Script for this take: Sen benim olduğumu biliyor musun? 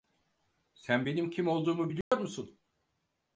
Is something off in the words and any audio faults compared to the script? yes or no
yes